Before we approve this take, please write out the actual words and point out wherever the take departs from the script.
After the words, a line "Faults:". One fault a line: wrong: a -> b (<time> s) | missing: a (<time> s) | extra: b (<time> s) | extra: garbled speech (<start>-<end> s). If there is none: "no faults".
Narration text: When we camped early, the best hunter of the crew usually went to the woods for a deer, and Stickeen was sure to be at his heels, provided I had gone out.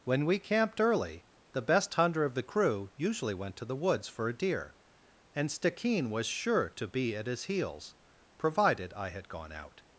When we camped early, the best hunter of the crew usually went to the woods for a deer, and Stickeen was sure to be at his heels, provided I had gone out.
Faults:
no faults